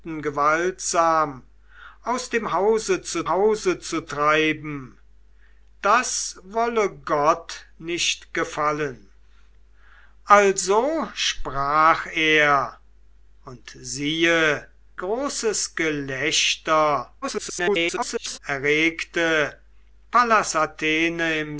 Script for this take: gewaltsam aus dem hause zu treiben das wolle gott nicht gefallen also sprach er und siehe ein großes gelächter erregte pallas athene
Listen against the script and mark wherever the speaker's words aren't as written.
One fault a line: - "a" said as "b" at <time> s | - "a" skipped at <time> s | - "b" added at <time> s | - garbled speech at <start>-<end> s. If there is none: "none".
- "hause zu" added at 3.3 s
- "ein" skipped at 14.7 s
- garbled speech at 17.2-18.4 s